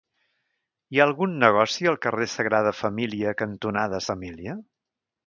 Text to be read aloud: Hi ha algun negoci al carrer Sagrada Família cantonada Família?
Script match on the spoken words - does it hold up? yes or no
yes